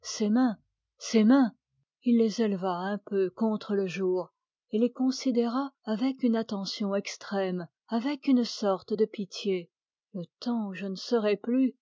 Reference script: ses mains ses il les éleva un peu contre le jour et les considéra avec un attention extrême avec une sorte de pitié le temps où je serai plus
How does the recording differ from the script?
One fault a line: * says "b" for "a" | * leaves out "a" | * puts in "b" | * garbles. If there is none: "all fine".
* puts in "mains"
* says "une" for "un"
* puts in "ne"